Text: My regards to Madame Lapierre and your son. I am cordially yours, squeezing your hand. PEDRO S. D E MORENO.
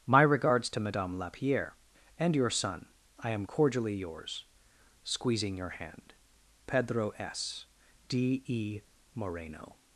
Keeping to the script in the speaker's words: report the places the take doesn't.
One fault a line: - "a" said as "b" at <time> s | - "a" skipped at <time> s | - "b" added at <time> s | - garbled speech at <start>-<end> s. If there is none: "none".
none